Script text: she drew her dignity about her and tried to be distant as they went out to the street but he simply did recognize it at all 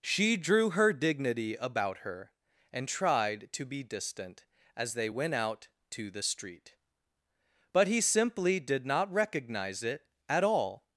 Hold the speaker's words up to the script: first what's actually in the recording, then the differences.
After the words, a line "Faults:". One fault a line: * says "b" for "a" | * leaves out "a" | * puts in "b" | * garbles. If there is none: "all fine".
she drew her dignity about her and tried to be distant as they went out to the street but he simply did not recognize it at all
Faults:
* puts in "not"